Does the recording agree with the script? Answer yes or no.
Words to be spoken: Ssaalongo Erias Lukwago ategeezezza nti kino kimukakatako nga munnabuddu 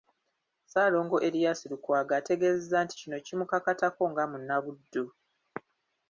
yes